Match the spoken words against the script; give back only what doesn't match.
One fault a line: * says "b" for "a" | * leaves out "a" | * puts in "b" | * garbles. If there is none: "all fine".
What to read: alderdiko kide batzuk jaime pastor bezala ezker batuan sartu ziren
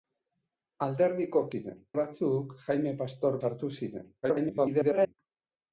* says "ziren" for "kide"
* leaves out "bezala ezker batuan"
* garbles